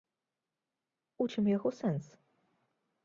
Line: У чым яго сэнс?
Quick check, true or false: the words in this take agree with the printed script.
true